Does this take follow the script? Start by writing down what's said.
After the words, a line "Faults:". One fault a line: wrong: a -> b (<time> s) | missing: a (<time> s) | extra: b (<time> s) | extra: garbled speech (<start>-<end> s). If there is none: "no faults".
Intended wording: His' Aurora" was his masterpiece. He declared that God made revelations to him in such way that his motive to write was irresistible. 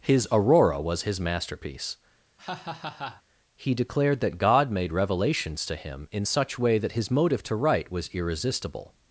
His' Aurora" was his masterpiece. He declared that God made revelations to him in such way that his motive to write was irresistible.
Faults:
no faults